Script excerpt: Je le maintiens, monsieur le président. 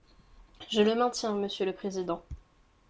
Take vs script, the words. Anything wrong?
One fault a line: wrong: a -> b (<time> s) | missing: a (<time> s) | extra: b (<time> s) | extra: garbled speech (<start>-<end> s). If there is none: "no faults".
no faults